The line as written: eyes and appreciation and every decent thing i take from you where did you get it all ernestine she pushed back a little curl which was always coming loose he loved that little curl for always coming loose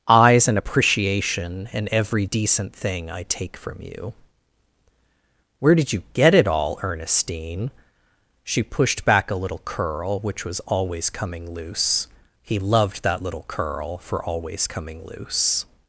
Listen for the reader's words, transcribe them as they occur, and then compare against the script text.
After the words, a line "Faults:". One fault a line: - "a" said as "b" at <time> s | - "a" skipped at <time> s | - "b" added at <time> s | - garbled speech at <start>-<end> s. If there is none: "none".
eyes and appreciation and every decent thing i take from you where did you get it all ernestine she pushed back a little curl which was always coming loose he loved that little curl for always coming loose
Faults:
none